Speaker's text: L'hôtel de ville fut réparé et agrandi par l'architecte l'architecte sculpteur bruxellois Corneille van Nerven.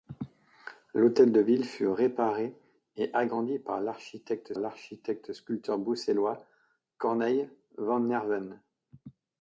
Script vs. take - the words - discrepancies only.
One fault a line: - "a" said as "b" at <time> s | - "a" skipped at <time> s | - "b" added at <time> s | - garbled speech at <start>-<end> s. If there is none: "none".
none